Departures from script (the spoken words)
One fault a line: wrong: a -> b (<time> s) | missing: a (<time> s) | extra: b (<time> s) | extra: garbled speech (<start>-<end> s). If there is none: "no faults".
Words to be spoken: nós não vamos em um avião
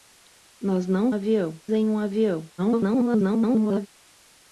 wrong: vamos -> avião (1.1 s)
extra: garbled speech (2.6-3.9 s)